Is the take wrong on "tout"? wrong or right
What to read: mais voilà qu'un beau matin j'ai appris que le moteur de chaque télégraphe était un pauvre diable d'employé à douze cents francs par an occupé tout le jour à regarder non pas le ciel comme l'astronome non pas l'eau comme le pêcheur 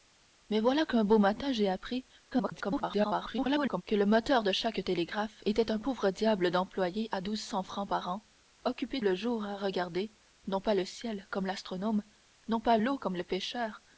wrong